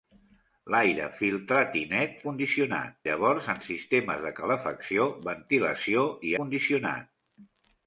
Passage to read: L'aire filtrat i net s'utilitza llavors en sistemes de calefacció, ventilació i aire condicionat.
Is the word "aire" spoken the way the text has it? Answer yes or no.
no